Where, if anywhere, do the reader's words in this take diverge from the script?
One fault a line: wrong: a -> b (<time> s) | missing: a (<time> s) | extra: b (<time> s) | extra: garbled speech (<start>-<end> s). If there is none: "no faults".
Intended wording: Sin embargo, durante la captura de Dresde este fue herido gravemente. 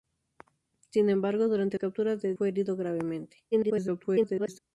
missing: la (1.8 s)
missing: Dresde este (2.3 s)
extra: garbled speech (3.5-4.6 s)